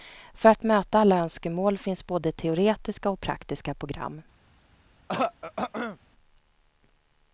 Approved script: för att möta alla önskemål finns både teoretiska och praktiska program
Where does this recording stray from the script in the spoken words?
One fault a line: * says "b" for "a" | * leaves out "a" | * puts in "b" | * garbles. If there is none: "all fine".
all fine